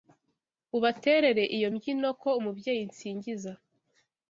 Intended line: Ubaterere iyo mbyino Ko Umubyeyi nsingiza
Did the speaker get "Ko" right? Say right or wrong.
right